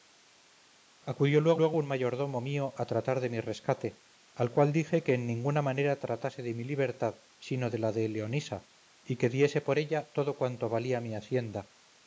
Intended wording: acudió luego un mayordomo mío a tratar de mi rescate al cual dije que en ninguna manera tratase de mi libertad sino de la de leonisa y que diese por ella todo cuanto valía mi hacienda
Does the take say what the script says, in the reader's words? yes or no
no